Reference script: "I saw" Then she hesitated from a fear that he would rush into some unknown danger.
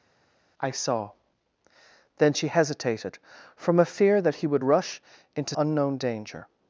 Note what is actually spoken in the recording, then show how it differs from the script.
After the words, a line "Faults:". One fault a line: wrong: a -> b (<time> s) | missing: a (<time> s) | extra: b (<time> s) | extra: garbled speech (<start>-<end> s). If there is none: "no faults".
"I saw" Then she hesitated from a fear that he would rush into unknown danger.
Faults:
missing: some (5.5 s)